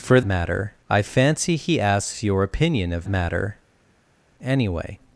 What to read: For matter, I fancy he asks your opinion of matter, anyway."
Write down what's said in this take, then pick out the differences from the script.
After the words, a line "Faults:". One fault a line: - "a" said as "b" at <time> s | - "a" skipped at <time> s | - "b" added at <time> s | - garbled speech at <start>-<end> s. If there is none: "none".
For matter, I fancy he asks your opinion of matter, anyway."
Faults:
none